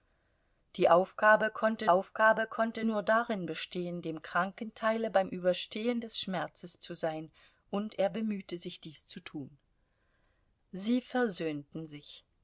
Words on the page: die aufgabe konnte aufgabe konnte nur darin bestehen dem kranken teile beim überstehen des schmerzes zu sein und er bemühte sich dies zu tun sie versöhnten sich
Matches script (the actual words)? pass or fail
pass